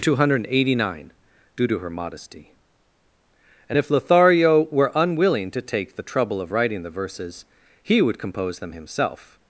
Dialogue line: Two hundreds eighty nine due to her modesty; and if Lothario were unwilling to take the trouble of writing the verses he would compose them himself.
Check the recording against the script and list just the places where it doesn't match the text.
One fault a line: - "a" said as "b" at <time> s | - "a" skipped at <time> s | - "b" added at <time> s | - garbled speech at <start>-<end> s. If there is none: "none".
- "hundreds" said as "hundred" at 0.1 s